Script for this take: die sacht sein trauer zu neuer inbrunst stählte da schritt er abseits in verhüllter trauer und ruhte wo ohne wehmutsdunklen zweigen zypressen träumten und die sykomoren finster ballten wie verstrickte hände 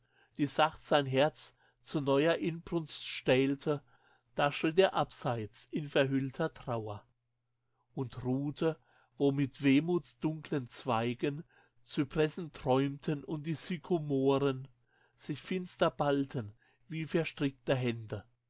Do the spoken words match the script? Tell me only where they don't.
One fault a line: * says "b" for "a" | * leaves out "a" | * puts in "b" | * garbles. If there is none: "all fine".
* says "herz" for "trauer"
* says "mit" for "ohne"
* puts in "sich"